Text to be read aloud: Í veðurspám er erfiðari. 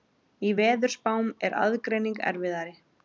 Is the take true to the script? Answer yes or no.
no